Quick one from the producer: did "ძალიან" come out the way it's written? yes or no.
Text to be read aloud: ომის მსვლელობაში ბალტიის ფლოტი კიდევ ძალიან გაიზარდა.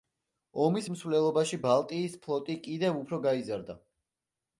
no